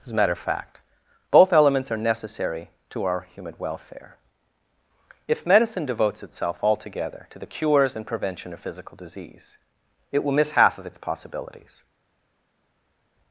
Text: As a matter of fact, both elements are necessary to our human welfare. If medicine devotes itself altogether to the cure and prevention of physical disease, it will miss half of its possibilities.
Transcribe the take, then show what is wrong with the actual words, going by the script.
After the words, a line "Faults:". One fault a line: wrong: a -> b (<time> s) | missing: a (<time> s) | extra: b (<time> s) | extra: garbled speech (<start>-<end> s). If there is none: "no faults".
As a matter of fact, both elements are necessary to our human welfare. If medicine devotes itself altogether to the cures and prevention of physical disease, it will miss half of its possibilities.
Faults:
wrong: cure -> cures (7.5 s)